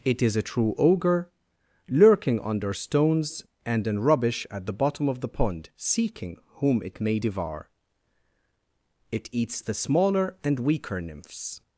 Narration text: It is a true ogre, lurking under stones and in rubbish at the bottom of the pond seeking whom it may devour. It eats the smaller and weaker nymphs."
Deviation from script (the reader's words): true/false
false